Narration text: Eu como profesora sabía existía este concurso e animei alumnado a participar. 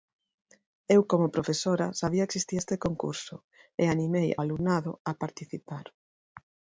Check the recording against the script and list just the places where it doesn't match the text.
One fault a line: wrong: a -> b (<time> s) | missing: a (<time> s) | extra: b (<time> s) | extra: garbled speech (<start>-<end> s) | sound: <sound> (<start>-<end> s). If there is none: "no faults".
no faults